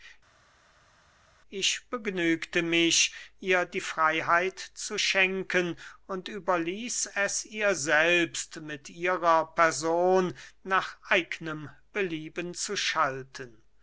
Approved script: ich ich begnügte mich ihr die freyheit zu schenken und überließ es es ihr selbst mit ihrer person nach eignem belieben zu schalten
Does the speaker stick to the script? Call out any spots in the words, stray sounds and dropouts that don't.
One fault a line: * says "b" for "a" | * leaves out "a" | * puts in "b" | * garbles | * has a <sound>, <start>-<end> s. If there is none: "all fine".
* leaves out "ich"
* leaves out "es"